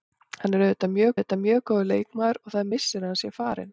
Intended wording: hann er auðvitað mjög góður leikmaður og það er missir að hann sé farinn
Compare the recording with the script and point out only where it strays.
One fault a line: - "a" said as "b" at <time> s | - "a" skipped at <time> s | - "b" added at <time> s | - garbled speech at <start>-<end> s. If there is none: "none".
- "auðvitað mjög" added at 1.2 s